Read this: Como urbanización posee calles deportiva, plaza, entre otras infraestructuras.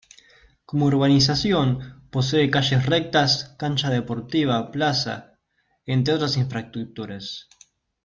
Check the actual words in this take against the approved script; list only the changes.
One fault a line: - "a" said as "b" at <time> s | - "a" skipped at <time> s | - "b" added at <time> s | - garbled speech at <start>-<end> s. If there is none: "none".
- "rectas cancha" added at 2.9 s